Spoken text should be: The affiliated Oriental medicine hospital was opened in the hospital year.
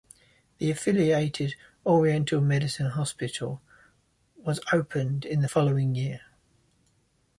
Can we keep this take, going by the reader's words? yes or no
no